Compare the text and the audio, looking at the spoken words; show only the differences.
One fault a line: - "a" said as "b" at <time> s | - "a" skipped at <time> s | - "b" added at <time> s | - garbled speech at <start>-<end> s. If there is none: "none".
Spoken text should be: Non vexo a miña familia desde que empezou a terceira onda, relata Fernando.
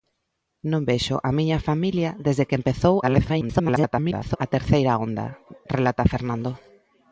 - garbled speech at 3.0-4.4 s